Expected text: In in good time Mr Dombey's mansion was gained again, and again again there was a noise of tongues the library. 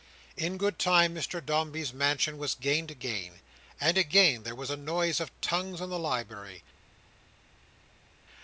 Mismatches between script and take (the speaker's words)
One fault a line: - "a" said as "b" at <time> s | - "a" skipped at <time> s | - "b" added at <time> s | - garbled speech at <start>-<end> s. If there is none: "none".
- "in" skipped at 0.6 s
- "again" skipped at 4.4 s
- "in" added at 5.8 s